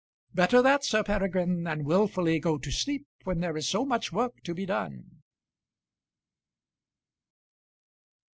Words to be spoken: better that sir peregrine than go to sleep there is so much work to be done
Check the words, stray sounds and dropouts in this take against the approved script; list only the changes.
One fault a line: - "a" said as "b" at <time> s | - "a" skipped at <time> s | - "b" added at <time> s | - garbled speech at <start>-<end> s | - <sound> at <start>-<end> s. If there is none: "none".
- "wilfully" added at 1.8 s
- "when" added at 3.3 s